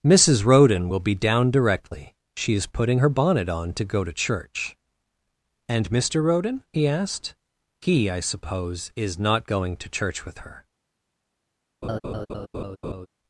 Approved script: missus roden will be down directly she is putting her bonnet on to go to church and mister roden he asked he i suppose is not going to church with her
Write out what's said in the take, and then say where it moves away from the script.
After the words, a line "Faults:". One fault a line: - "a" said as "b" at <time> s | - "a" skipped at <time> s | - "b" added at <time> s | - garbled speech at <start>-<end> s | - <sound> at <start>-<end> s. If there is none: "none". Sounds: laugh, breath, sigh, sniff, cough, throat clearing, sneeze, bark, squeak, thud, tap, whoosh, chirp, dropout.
missus roden will be down directly she is putting her bonnet on to go to church and mister roden he asked he i suppose is not going to church with her
Faults:
- laugh at 11.8-13.1 s